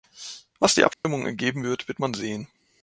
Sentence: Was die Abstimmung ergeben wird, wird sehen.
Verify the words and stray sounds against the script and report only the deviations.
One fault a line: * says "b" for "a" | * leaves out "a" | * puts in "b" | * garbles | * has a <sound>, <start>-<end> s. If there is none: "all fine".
* has a dropout, 0.9-1.0 s
* puts in "man"